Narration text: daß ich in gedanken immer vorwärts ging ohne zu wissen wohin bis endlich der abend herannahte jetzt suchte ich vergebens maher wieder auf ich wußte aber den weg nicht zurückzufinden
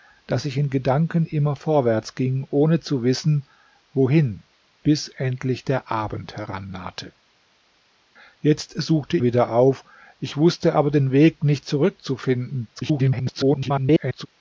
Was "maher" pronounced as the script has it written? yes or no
no